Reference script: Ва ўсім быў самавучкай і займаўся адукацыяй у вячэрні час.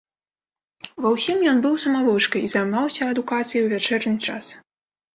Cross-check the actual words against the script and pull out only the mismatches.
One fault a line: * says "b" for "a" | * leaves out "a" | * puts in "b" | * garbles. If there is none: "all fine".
* puts in "ён"